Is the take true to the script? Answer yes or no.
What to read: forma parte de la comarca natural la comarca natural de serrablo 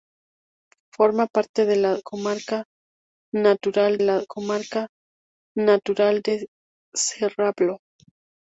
yes